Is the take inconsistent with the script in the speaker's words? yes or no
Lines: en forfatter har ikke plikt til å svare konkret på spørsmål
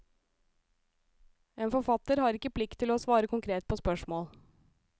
no